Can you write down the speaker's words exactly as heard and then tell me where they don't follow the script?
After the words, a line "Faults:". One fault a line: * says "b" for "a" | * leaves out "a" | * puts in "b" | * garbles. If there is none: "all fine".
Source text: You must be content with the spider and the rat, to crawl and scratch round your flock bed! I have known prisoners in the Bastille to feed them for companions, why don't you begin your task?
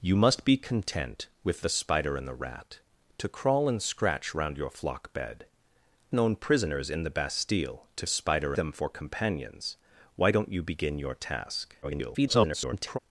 You must be content with the spider and the rat, to crawl and scratch round your flock bed! known prisoners in the Bastille to spider them for companions, why don't you begin your task? [garbled]
Faults:
* leaves out "I have"
* says "spider" for "feed"
* garbles